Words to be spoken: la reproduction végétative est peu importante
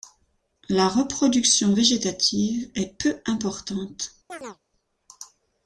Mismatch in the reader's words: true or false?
false